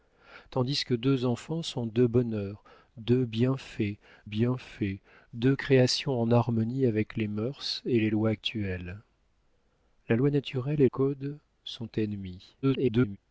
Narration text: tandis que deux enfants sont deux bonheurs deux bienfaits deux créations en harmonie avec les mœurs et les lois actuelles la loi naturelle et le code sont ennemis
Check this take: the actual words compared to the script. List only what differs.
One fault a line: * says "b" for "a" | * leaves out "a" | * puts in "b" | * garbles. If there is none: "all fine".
* puts in "bienfaits"
* leaves out "le"
* garbles